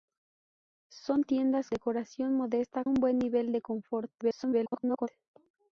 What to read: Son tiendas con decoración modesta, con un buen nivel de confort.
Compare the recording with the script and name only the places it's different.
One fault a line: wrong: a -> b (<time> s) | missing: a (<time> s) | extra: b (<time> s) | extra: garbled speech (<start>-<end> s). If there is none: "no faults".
missing: con (1.7 s)
missing: con (2.8 s)
extra: garbled speech (4.2-5.1 s)